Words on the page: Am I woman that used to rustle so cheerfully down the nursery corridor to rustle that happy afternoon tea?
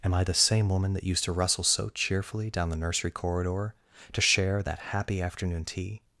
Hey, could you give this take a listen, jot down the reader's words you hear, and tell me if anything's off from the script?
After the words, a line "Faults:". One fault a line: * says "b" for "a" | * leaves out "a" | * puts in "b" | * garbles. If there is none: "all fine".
Am I the same woman that used to rustle so cheerfully down the nursery corridor to share that happy afternoon tea?
Faults:
* puts in "the same"
* says "share" for "rustle"